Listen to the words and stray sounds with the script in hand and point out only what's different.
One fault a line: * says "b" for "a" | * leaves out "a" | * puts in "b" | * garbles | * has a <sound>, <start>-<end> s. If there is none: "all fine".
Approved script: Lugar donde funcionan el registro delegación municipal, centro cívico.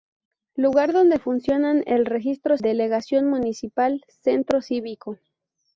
all fine